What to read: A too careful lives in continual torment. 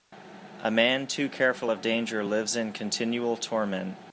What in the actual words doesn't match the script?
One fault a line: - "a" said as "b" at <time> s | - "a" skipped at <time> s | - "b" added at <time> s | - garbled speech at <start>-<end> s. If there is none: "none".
- "man" added at 0.7 s
- "of danger" added at 1.7 s